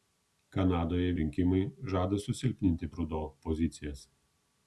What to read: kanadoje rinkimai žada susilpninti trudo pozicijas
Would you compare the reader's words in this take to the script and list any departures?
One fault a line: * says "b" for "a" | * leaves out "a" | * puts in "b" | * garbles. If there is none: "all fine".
all fine